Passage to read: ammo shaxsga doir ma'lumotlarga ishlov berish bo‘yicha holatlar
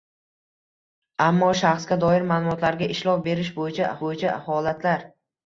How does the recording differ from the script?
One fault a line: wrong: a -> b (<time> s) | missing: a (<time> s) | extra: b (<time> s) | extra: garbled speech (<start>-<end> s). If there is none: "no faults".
extra: bo‘yicha (4.1 s)